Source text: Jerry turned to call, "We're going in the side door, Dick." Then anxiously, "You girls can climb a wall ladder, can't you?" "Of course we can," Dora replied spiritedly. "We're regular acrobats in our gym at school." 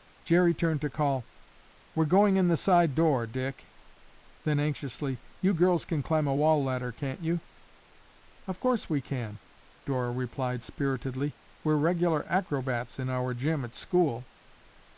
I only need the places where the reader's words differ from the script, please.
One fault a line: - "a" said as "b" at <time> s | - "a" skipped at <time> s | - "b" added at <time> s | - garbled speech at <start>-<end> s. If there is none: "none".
none